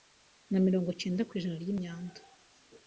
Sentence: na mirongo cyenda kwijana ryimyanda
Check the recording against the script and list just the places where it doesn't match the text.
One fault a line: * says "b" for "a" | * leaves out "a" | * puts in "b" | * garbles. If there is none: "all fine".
all fine